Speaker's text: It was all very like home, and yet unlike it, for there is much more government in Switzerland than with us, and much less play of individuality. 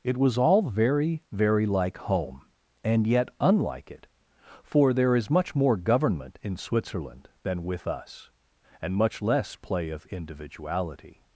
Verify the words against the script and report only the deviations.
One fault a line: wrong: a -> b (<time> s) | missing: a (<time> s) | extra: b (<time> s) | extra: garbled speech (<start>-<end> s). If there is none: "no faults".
extra: very (1.3 s)